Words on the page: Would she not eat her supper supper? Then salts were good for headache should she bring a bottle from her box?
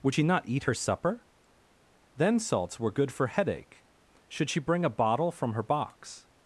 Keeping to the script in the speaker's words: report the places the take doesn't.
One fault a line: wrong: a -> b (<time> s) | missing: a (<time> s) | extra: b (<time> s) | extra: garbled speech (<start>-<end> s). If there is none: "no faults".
missing: supper (1.2 s)